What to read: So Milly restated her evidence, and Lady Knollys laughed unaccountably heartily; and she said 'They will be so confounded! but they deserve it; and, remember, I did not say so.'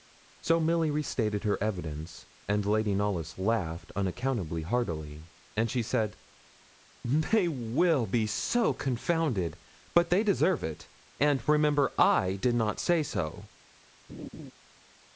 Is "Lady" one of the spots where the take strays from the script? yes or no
no